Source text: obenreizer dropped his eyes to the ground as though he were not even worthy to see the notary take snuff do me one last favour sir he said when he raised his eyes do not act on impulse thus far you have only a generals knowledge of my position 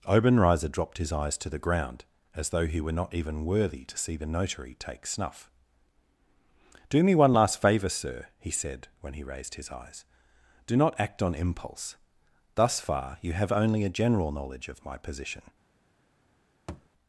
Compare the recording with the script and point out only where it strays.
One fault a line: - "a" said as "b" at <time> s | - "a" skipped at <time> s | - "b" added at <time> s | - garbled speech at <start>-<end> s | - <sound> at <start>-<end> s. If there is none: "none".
- "generals" said as "general" at 13.9 s
- thud at 16.7-16.9 s